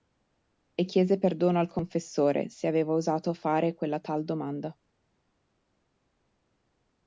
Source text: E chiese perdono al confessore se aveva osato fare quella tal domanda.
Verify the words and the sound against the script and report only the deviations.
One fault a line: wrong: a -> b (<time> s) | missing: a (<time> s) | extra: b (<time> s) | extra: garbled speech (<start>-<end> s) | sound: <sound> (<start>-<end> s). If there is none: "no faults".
no faults